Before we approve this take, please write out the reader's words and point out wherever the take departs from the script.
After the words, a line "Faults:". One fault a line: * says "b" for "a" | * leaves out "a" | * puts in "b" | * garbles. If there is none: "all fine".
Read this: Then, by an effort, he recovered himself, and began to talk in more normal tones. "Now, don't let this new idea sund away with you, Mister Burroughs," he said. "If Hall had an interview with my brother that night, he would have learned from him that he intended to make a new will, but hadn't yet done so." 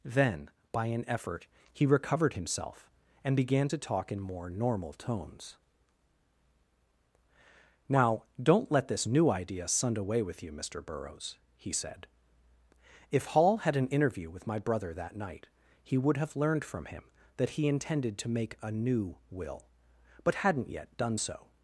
Then, by an effort, he recovered himself, and began to talk in more normal tones. "Now, don't let this new idea sund away with you, Mister Burroughs," he said. "If Hall had an interview with my brother that night, he would have learned from him that he intended to make a new will, but hadn't yet done so."
Faults:
all fine